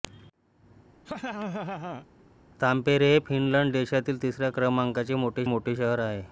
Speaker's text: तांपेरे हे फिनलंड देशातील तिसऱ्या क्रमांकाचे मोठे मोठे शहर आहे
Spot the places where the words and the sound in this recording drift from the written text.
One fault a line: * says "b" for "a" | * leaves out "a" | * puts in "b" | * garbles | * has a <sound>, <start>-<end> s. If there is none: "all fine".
* has a laugh, 1.1-2.1 s